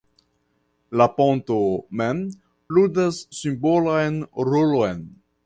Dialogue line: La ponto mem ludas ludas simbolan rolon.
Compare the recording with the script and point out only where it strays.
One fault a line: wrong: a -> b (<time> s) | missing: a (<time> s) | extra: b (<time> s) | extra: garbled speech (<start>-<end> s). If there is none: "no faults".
missing: ludas (3.2 s)